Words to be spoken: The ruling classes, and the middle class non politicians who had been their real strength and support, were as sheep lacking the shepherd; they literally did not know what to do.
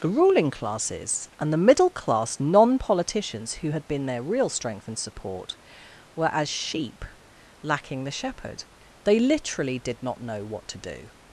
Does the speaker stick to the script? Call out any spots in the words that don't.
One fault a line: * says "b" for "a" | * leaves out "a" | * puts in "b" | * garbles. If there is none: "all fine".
all fine